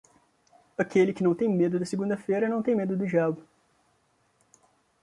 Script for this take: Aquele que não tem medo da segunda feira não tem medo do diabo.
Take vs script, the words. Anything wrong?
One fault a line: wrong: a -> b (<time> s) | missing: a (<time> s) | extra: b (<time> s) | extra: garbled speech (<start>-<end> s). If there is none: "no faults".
no faults